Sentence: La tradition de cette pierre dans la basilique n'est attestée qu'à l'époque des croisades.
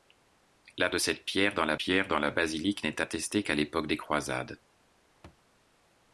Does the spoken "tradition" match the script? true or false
false